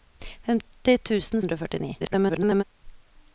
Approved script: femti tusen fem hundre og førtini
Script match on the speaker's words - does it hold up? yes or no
no